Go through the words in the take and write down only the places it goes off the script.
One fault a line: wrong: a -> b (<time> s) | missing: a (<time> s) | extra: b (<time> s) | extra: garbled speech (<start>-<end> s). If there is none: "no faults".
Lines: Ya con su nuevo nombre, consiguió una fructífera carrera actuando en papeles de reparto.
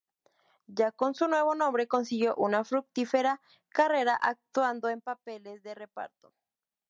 no faults